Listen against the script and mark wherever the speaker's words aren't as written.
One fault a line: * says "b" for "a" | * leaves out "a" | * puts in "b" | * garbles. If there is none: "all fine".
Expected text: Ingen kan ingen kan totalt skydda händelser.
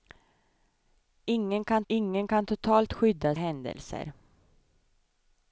all fine